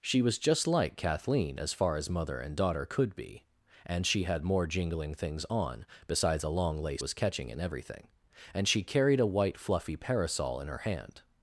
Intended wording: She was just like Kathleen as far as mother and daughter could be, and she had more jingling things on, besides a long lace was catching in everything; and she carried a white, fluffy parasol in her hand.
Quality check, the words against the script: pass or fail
pass